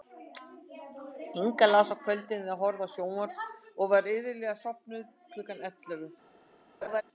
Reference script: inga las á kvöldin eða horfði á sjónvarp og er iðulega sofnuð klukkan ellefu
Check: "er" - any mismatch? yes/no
yes